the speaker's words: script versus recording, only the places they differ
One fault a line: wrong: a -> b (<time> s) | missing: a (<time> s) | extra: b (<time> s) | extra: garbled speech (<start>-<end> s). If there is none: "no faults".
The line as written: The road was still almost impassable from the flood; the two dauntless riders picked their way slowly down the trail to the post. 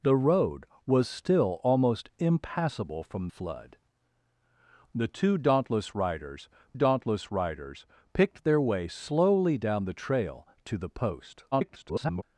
missing: the (3.3 s)
extra: dauntless riders (6.7 s)
extra: garbled speech (11.5-12.2 s)